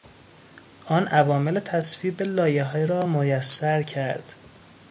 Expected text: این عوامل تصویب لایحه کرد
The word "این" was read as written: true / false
false